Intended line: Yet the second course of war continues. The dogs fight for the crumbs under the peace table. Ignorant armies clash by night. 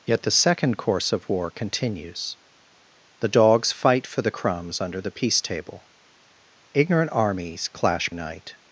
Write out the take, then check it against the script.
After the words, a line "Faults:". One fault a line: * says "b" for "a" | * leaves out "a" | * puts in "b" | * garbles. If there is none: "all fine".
Yet the second course of war continues. The dogs fight for the crumbs under the peace table. Ignorant armies clash night.
Faults:
* leaves out "by"